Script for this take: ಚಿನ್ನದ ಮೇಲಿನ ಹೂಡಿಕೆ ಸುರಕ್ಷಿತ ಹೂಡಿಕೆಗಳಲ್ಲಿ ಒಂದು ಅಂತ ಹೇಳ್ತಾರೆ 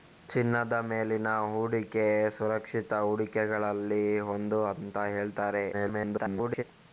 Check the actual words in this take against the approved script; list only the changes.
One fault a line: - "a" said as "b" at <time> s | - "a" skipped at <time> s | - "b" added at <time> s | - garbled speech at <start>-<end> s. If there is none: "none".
- garbled speech at 5.7-6.6 s